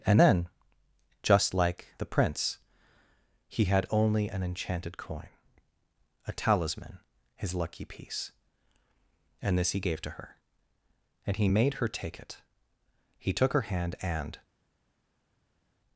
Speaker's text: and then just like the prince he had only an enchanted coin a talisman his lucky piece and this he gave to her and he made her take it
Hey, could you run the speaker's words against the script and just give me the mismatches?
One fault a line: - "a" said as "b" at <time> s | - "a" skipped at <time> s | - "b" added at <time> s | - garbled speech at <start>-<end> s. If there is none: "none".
- "he took her hand and" added at 13.2 s